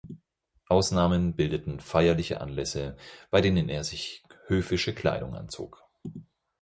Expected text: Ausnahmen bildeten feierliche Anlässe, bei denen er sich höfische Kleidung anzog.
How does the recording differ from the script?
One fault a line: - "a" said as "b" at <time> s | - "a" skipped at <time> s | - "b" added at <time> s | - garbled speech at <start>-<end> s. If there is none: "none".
none